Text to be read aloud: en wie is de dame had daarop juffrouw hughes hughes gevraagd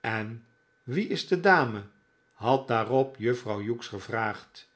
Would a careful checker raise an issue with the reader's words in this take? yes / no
yes